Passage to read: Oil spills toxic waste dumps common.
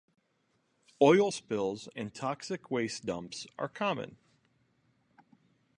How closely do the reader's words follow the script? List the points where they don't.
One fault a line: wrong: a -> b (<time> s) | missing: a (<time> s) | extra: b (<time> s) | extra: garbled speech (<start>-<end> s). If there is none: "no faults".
extra: and (2.0 s)
extra: are (3.6 s)